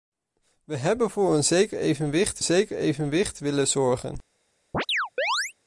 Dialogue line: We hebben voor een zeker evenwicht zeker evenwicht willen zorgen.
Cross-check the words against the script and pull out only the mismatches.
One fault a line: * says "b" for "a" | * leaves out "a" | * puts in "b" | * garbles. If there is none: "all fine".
all fine